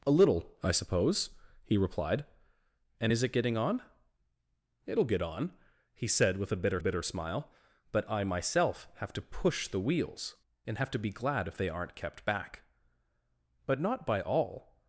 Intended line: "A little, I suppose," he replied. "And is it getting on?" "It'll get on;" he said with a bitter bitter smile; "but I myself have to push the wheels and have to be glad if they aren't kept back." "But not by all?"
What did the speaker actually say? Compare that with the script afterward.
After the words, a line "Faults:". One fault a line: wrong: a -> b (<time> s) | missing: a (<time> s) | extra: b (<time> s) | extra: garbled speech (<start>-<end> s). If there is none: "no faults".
"A little, I suppose," he replied. "And is it getting on?" "It'll get on;" he said with a bitter bitter smile; "but I myself have to push the wheels and have to be glad if they aren't kept back." "But not by all?"
Faults:
no faults